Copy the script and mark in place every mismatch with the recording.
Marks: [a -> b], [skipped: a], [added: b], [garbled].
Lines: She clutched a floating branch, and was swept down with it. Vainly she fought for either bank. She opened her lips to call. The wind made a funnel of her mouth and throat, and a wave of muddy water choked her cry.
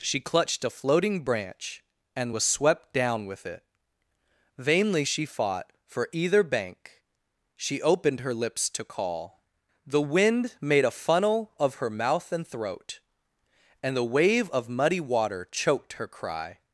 She clutched a floating branch, and was swept down with it. Vainly she fought for either bank. She opened her lips to call. The wind made a funnel of her mouth and throat, and [a -> the] wave of muddy water choked her cry.